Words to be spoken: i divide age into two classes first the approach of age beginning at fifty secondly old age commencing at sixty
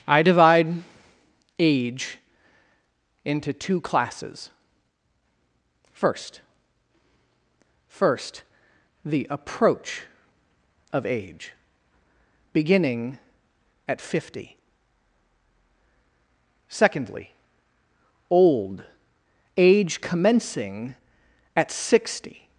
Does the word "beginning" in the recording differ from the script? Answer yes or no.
no